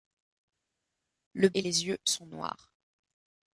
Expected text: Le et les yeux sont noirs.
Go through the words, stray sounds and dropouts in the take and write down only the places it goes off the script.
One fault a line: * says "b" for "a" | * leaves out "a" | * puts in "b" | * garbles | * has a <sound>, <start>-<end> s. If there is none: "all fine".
all fine